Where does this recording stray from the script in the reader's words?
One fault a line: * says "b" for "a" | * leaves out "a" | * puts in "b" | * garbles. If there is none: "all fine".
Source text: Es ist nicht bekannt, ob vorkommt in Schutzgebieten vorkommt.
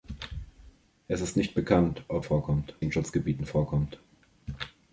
all fine